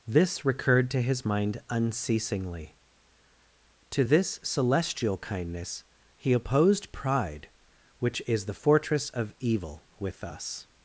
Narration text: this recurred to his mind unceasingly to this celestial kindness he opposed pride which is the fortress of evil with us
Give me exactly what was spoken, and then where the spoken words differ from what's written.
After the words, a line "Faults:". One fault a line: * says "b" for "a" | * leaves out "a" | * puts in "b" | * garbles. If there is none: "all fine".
this recurred to his mind unceasingly to this celestial kindness he opposed pride which is the fortress of evil with us
Faults:
all fine